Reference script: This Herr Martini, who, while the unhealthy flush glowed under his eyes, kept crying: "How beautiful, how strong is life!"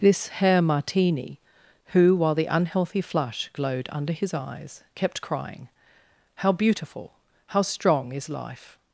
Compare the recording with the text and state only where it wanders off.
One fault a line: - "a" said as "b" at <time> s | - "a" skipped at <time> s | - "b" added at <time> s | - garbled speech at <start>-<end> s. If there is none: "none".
none